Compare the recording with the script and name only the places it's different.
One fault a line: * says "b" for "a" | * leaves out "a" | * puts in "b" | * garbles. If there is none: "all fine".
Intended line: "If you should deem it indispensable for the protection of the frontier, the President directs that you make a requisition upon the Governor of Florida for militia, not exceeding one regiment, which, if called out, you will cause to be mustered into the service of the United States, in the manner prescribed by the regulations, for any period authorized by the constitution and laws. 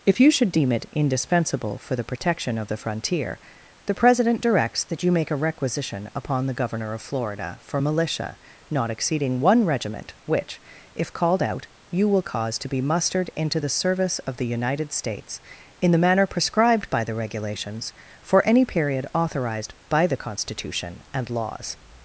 all fine